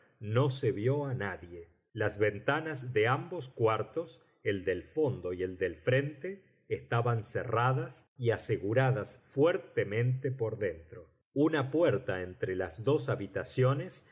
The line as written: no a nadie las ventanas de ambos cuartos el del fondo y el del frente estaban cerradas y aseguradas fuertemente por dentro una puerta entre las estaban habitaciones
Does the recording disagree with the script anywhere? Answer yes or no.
yes